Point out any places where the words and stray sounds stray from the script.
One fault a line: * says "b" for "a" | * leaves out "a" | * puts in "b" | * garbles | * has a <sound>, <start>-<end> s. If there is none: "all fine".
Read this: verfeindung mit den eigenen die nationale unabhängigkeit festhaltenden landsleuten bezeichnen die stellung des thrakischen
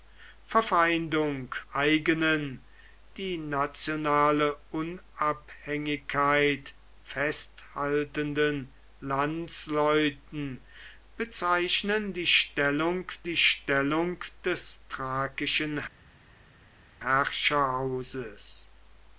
* leaves out "mit den"
* puts in "die stellung"